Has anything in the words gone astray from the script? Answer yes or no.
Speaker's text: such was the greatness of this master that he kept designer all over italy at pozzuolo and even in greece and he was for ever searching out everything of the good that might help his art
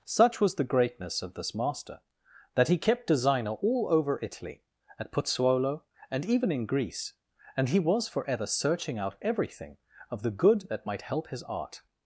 no